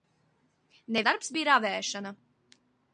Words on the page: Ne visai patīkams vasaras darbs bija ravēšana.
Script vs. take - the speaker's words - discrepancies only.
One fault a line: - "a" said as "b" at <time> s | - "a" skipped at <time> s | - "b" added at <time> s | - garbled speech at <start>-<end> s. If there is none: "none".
- "visai patīkams vasaras" skipped at 1.0 s